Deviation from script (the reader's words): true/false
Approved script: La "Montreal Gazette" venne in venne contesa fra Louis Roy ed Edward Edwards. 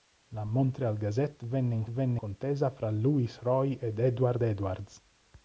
false